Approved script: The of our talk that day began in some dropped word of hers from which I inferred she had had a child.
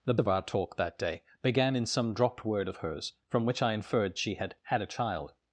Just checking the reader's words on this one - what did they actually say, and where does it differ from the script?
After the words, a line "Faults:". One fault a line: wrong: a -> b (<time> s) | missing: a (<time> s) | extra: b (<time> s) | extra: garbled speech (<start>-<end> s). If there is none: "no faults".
The of our talk that day began in some dropped word of hers from which I inferred she had had a child.
Faults:
no faults